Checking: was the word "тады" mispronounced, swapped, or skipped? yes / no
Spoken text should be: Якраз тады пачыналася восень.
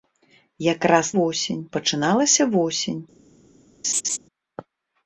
yes